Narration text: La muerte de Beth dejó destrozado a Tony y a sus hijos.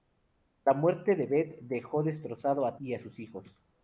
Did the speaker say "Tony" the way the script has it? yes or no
no